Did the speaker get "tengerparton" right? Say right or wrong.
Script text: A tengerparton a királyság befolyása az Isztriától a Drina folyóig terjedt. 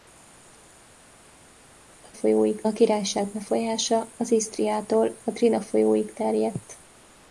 wrong